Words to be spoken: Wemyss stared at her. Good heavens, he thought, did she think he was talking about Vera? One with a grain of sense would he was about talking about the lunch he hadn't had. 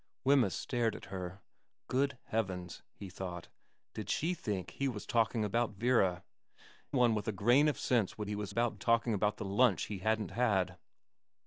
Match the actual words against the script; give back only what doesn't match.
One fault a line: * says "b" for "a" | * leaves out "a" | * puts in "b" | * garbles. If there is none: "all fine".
all fine